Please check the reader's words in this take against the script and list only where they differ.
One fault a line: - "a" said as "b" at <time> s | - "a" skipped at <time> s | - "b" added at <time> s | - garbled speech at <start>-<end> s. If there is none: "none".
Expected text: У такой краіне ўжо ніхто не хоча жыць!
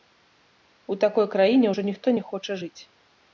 none